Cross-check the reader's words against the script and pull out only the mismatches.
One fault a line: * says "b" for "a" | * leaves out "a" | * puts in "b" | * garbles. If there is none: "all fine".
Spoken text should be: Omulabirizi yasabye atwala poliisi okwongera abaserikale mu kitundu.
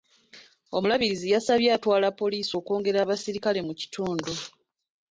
all fine